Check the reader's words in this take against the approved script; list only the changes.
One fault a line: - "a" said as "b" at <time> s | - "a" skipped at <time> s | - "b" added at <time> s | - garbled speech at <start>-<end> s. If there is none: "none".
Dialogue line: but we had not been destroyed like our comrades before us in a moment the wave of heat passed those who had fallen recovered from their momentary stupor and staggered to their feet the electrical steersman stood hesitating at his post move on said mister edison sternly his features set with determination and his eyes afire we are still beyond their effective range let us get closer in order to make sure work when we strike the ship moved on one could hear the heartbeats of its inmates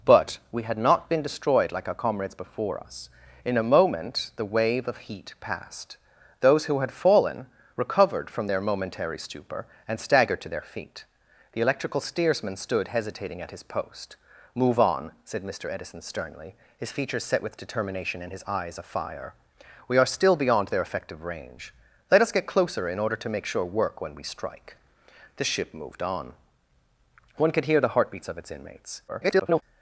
- garbled speech at 29.1-29.6 s